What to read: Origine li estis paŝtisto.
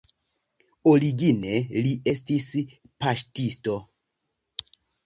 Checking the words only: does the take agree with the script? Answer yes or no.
yes